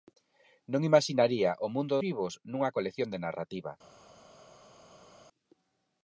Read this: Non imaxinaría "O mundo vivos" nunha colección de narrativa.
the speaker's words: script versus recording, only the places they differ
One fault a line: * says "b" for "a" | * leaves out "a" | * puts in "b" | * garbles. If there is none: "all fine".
all fine